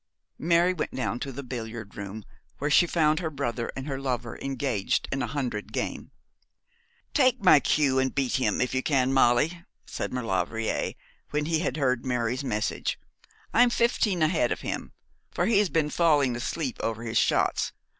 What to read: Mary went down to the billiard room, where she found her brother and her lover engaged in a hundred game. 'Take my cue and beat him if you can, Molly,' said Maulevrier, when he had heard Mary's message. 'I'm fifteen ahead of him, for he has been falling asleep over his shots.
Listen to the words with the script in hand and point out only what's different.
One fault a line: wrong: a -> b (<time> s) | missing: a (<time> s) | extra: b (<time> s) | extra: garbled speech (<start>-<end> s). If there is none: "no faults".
no faults